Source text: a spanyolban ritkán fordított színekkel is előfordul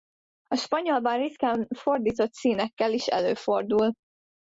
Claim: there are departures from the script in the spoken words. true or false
false